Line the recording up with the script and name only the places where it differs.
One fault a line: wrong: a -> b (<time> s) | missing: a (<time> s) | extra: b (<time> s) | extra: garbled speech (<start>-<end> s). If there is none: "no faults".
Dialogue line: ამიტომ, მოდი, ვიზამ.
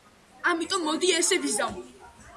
extra: ესე (1.2 s)